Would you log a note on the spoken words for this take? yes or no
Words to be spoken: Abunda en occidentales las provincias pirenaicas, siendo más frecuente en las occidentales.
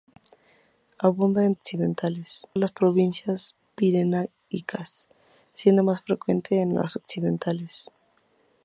no